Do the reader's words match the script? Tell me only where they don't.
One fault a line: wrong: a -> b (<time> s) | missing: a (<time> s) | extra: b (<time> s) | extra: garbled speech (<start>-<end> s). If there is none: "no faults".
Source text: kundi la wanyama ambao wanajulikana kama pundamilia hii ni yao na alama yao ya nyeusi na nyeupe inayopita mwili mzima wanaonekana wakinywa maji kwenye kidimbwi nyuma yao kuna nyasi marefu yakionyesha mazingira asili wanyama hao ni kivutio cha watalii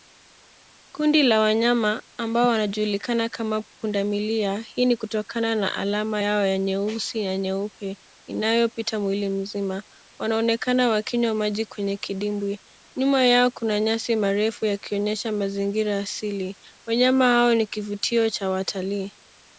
wrong: yao -> kutokana (5.0 s)